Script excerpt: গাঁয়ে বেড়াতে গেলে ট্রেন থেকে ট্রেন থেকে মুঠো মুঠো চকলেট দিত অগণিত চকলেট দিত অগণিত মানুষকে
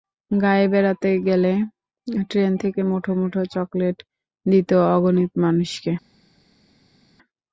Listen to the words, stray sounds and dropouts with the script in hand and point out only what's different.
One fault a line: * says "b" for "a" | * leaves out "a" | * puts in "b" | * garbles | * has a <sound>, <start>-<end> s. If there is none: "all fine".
* leaves out "ট্রেন থেকে"
* leaves out "চকলেট দিত অগণিত"